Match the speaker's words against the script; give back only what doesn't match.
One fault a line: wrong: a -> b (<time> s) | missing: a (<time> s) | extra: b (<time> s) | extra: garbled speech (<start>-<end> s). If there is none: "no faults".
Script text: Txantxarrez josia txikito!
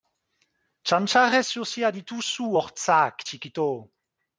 extra: dituzu hortzak (2.0 s)